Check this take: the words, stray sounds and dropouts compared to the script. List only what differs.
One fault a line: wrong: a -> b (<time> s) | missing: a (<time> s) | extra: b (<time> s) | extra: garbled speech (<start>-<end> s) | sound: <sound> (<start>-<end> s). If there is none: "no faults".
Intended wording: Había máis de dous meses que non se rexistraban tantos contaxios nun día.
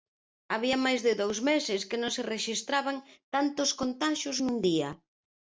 no faults